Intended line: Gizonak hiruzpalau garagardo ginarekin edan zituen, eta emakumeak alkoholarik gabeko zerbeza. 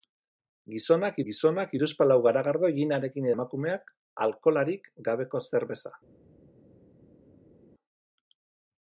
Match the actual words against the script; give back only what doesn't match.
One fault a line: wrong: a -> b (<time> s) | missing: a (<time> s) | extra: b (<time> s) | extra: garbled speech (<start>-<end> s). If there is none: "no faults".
extra: gizonak (1.3 s)
missing: edan zituen eta (3.3 s)